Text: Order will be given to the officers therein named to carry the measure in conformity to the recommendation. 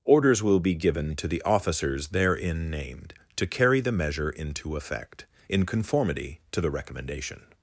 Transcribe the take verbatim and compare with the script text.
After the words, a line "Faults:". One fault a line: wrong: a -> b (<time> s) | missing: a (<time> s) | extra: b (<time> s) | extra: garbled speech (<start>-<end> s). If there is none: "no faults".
Orders will be given to the officers therein named to carry the measure into effect, in conformity to the recommendation.
Faults:
wrong: Order -> Orders (0.0 s)
extra: into effect (4.3 s)